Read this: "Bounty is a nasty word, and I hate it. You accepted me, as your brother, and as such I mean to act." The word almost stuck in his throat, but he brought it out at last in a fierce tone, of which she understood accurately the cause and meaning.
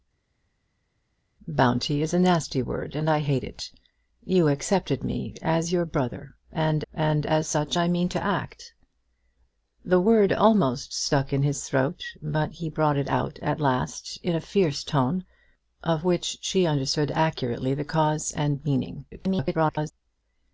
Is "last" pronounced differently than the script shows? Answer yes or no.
no